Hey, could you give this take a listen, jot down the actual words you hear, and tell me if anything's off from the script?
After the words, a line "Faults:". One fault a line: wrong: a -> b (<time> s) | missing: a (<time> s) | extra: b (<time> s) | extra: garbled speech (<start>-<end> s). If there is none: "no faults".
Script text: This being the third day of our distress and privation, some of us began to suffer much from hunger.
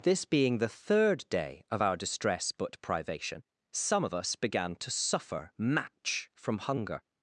This being the third day of our distress but privation, some of us began to suffer match from hunger.
Faults:
wrong: and -> but (2.5 s)
wrong: much -> match (5.6 s)